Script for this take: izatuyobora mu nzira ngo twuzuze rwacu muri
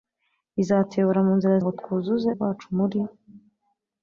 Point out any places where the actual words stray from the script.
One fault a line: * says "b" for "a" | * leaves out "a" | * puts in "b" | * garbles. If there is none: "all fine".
all fine